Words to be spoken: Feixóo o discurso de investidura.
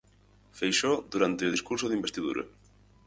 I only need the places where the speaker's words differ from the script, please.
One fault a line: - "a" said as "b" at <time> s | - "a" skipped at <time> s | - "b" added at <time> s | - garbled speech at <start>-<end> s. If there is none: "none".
- "durante" added at 1.1 s